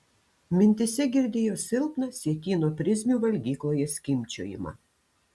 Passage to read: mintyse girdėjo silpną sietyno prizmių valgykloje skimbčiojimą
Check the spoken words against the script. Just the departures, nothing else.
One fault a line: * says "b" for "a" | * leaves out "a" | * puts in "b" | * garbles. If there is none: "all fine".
all fine